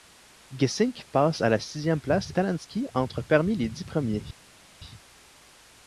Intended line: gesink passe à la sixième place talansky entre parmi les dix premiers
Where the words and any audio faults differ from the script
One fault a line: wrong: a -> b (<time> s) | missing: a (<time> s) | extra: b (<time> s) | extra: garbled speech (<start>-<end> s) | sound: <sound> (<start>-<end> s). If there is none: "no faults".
no faults